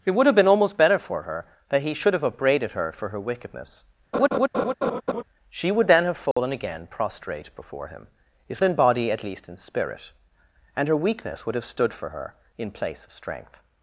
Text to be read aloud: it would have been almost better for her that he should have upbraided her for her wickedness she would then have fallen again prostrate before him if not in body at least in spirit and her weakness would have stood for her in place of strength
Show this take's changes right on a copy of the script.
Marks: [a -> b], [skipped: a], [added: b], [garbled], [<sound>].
it would have been almost better for her that he should have upbraided her for her wickedness [laugh] she would then have fallen [dropout] again prostrate before him if [skipped: not] in body at least in spirit and her weakness would have stood for her in place of strength